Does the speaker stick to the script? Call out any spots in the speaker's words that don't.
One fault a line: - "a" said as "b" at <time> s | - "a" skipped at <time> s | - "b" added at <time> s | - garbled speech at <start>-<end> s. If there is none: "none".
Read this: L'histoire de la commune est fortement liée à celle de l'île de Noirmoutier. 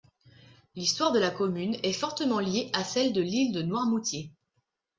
none